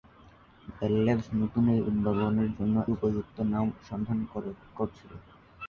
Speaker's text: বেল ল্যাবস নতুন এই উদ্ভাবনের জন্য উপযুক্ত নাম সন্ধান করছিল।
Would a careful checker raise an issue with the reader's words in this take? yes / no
no